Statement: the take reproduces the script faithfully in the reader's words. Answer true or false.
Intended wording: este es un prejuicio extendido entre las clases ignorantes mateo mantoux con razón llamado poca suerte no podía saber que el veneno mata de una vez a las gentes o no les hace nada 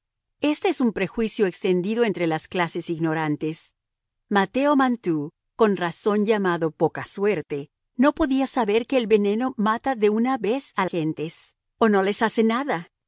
false